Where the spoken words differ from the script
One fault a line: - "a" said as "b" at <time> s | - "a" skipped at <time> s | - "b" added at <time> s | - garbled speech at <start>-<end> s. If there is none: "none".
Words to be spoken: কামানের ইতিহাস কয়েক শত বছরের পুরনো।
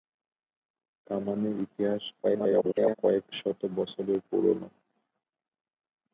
- garbled speech at 2.2-3.0 s